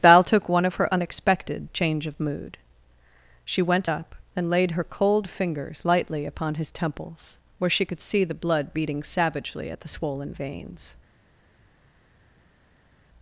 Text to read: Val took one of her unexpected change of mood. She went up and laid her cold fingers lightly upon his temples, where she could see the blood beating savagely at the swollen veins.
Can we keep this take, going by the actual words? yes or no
yes